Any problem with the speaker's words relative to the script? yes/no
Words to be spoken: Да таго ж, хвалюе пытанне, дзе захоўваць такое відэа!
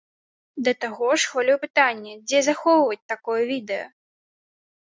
no